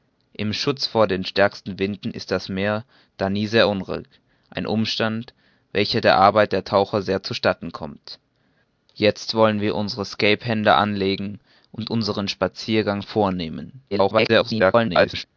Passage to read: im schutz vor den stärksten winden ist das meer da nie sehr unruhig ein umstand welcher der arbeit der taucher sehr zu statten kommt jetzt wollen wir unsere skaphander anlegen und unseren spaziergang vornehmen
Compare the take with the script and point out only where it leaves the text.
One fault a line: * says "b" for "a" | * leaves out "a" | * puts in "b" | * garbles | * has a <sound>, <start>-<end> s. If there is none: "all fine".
* garbles